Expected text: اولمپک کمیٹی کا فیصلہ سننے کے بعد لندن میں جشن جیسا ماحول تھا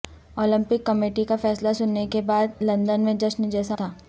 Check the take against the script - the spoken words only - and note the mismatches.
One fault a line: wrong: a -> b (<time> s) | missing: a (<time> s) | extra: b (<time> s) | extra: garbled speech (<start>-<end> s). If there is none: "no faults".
missing: ماحول (3.7 s)